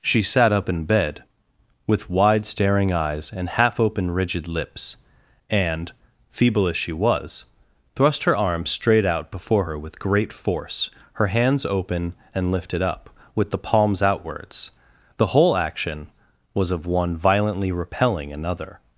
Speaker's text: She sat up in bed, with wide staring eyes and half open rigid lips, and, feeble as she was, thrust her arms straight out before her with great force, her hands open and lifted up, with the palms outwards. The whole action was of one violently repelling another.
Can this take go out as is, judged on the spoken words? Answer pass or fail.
pass